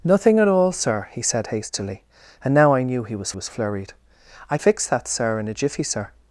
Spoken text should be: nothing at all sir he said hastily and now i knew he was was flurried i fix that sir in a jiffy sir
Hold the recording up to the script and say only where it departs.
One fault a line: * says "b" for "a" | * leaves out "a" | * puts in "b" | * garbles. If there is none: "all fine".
all fine